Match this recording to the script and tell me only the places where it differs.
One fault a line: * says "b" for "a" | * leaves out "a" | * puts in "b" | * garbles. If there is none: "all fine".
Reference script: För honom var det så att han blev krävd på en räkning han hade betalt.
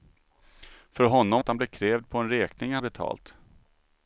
* leaves out "var det så"
* leaves out "hade"